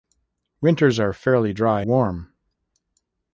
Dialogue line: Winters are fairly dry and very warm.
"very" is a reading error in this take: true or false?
true